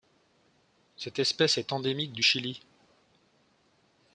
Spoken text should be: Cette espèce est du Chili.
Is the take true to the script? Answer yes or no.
no